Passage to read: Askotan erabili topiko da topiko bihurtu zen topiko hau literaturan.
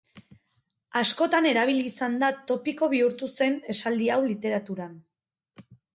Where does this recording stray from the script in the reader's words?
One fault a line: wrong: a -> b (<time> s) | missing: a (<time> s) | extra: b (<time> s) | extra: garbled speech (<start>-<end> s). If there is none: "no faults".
wrong: topiko -> izan (1.9 s)
wrong: topiko -> esaldi (3.8 s)